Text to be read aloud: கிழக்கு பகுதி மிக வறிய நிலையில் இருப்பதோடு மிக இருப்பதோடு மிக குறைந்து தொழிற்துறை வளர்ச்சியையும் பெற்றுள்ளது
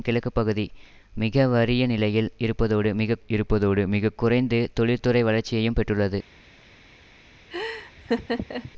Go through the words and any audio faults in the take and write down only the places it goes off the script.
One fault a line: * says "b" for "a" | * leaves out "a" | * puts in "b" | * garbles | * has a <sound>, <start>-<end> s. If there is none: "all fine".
* has a laugh, 7.5-8.7 s